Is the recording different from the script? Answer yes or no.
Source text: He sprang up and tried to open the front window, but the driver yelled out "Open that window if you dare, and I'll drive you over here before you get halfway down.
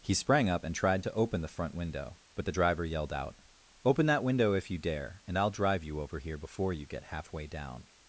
no